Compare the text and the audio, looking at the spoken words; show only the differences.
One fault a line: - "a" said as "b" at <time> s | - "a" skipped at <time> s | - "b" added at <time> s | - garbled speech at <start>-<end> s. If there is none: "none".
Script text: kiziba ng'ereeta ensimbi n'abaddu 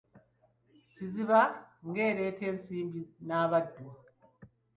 none